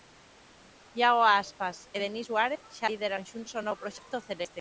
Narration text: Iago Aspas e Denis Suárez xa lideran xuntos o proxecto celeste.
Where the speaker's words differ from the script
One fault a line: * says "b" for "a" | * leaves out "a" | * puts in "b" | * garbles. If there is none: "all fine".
* puts in "novo"